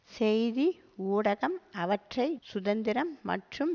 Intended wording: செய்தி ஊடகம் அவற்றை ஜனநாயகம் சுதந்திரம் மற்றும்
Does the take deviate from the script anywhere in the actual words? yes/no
yes